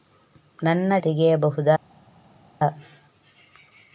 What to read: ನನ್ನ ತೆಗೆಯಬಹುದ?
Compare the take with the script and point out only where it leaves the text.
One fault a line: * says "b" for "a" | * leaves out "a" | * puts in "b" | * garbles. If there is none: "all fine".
all fine